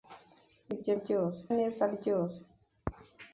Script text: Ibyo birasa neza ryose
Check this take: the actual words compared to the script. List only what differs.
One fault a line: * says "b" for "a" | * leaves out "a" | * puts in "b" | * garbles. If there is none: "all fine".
* says "ryose" for "birasa"